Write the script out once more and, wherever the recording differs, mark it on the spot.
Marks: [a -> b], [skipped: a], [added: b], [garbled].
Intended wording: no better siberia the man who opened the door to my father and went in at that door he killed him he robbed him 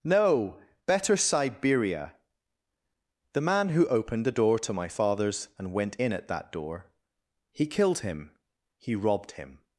no better siberia the man who opened the door to my [father -> fathers] and went in at that door he killed him he robbed him